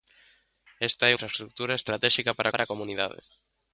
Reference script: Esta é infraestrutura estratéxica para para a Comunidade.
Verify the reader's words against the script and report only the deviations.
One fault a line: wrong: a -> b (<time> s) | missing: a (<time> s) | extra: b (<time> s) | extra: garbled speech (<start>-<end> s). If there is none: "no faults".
no faults